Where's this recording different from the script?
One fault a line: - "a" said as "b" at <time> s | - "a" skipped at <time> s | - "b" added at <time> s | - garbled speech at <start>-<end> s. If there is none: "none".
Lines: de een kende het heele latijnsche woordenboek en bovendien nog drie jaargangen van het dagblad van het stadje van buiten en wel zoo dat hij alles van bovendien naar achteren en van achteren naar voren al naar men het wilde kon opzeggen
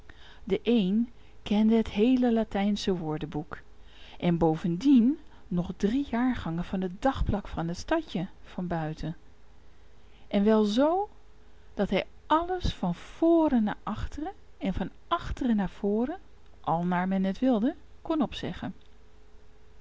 - "bovendien" said as "voren" at 12.9 s